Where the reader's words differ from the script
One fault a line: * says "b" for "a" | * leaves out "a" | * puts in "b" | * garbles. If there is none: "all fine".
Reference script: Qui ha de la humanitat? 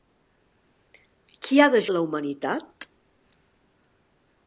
all fine